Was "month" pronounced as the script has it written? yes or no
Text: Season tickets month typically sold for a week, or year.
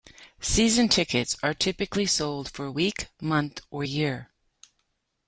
no